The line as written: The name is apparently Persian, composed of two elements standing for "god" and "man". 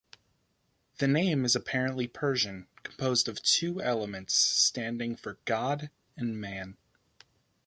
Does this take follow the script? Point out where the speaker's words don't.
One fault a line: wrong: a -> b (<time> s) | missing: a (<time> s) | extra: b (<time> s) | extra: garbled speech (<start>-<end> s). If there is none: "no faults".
no faults